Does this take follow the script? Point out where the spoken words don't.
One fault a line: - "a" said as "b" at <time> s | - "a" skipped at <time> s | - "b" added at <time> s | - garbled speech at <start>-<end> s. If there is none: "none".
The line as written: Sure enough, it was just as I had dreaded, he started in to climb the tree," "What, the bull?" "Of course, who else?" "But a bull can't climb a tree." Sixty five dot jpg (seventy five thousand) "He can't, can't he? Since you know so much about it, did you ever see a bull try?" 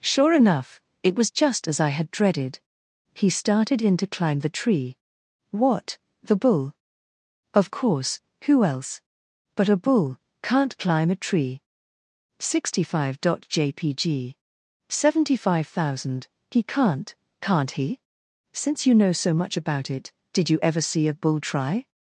none